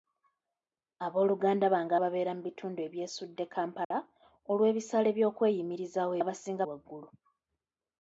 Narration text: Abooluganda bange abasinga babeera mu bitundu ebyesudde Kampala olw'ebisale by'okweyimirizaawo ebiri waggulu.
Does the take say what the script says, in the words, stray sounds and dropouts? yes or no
no